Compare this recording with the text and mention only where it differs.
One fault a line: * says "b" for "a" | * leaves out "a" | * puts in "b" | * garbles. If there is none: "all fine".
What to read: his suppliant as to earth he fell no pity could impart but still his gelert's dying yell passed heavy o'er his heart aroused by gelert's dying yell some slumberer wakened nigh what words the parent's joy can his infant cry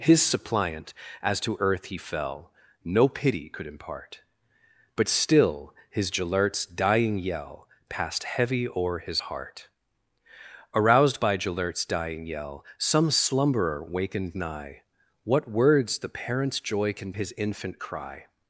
all fine